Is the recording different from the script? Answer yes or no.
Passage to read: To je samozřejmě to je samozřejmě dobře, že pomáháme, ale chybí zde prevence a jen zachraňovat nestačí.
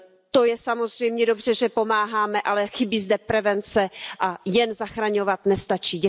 yes